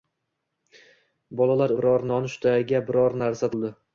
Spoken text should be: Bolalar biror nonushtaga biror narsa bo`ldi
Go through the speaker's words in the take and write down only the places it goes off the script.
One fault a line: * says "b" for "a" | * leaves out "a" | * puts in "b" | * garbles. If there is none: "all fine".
all fine